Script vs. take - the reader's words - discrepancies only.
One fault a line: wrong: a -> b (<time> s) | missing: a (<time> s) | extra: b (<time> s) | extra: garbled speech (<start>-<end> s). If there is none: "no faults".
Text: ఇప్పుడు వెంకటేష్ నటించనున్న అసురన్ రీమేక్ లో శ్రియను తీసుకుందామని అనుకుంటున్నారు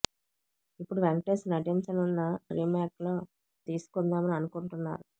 missing: అసురన్ (2.2 s)
missing: శ్రియను (3.2 s)